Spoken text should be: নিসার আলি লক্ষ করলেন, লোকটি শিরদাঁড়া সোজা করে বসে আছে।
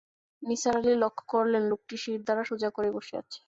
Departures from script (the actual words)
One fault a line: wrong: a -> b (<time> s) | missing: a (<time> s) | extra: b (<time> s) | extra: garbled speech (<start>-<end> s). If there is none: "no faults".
no faults